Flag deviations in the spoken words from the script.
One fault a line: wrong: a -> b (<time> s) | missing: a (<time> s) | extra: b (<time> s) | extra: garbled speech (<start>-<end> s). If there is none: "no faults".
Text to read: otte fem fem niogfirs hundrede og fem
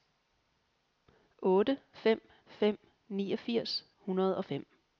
no faults